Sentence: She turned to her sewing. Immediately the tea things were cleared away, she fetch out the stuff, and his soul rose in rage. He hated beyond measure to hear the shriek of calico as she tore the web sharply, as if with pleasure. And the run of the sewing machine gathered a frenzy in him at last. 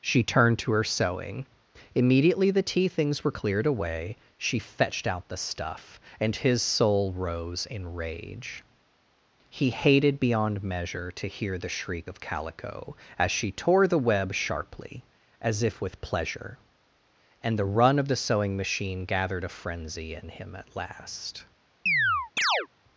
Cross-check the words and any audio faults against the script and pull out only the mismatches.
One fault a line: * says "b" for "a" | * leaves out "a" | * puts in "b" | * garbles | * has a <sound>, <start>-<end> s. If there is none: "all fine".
* says "fetched" for "fetch"
* has a chirp, 21.9-22.7 s